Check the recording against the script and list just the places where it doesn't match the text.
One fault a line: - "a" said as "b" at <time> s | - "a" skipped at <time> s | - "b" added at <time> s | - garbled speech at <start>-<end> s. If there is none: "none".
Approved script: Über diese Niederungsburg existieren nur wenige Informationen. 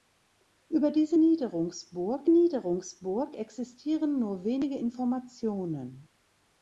- "Niederungsburg" added at 2.3 s